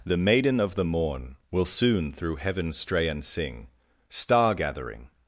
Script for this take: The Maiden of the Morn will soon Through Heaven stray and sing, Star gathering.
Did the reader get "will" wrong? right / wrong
right